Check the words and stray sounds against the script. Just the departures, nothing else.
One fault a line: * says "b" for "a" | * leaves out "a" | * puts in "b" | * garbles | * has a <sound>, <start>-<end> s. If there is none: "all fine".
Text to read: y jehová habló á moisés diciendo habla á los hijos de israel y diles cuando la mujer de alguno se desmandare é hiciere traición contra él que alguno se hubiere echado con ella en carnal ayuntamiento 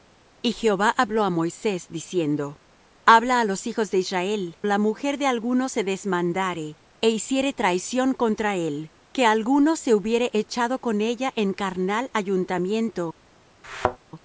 * leaves out "y diles cuando"
* has a thud, 13.6-14.0 s